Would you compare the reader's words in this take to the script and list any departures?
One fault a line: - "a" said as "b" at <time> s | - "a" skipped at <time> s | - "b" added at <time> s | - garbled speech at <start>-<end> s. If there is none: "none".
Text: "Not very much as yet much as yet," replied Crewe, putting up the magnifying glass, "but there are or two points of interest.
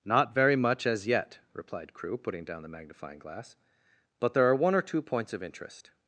- "much as yet" skipped at 1.4 s
- "up" said as "down" at 2.4 s
- "one" added at 4.5 s